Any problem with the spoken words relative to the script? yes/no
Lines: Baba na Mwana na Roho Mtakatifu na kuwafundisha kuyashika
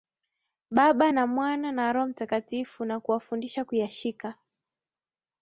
no